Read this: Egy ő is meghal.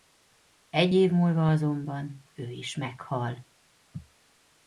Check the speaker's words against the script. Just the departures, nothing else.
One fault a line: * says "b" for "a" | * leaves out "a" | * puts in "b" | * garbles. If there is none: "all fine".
* puts in "év múlva azonban"